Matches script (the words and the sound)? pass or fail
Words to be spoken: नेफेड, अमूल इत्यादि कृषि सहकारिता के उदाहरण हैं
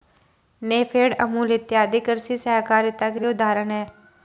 fail